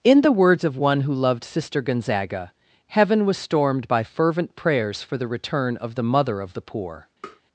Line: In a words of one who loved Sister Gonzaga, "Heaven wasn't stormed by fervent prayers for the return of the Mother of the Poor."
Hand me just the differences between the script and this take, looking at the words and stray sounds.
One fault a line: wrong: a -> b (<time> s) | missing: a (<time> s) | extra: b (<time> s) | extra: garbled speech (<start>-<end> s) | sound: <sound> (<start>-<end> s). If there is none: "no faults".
wrong: a -> the (0.2 s)
wrong: wasn't -> was (3.2 s)
sound: tap (7.2-7.4 s)